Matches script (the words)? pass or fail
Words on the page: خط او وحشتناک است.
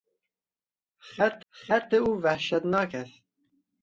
fail